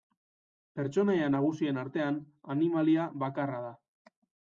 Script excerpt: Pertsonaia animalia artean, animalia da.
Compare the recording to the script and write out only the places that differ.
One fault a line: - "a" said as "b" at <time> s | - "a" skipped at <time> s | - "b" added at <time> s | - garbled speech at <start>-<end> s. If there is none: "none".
- "animalia" said as "nagusien" at 1.3 s
- "bakarra" added at 3.2 s